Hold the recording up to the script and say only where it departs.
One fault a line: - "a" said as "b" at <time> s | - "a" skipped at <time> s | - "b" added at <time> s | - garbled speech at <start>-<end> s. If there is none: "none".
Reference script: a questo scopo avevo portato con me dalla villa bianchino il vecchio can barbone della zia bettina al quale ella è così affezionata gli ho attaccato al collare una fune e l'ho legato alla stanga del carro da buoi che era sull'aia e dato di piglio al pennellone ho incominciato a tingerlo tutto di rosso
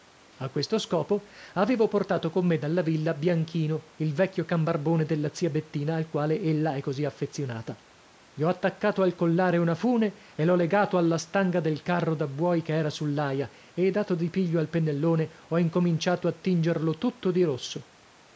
none